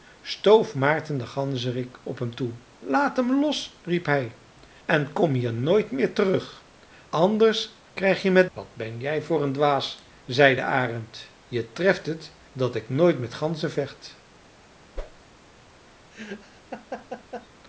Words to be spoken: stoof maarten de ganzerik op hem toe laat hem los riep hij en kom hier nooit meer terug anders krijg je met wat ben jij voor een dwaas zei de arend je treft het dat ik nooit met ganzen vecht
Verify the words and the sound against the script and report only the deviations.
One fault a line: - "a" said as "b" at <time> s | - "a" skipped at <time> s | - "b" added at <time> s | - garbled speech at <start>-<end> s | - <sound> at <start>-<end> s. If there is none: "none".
- whoosh at 15.0-15.2 s
- laugh at 16.1-17.5 s